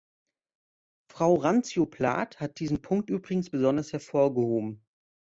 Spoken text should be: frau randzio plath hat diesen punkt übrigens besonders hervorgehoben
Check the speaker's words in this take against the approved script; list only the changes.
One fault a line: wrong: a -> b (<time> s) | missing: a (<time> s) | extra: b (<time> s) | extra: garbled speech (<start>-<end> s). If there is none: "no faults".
no faults